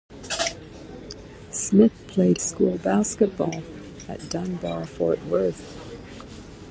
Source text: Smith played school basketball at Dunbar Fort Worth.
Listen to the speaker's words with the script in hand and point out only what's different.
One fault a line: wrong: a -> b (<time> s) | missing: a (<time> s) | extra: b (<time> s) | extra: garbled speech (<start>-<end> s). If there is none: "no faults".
no faults